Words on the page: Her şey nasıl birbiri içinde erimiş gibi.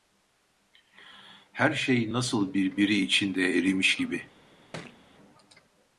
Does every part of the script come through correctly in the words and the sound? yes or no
no